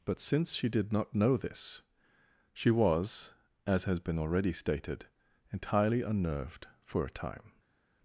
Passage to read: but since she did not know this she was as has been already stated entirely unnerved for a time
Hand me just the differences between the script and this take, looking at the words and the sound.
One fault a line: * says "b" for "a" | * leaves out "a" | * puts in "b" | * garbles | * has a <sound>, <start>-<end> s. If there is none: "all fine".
all fine